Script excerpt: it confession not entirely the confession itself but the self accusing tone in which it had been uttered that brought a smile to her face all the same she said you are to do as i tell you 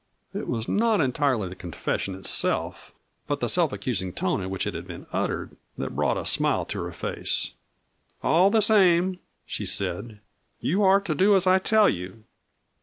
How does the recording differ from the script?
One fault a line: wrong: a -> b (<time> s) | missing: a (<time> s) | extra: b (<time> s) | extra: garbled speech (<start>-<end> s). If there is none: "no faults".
wrong: confession -> was (0.5 s)